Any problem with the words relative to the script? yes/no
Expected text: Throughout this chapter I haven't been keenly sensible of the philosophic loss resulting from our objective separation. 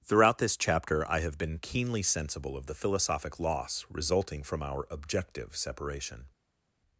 yes